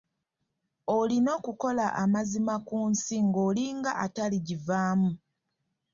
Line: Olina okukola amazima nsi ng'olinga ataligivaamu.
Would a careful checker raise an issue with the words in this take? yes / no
yes